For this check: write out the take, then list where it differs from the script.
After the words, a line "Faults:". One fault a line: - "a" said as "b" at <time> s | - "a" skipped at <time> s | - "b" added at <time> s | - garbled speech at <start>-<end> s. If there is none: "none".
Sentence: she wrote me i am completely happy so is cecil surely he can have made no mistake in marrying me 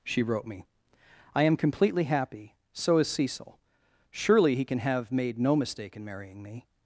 she wrote me i am completely happy so is cecil surely he can have made no mistake in marrying me
Faults:
none